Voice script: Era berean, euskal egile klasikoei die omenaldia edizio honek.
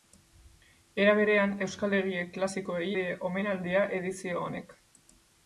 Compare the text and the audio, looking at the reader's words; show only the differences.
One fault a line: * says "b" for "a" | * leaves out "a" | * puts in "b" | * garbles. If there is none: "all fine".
all fine